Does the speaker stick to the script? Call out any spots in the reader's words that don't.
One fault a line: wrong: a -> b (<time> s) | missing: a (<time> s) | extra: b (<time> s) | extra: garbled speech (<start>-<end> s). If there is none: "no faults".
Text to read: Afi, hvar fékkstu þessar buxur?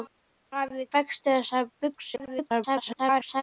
missing: hvar (0.8 s)
extra: garbled speech (2.2-3.4 s)